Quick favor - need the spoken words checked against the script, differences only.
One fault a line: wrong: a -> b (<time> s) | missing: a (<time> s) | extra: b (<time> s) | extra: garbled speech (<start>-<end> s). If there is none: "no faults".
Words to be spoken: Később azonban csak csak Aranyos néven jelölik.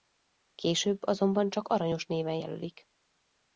missing: csak (1.7 s)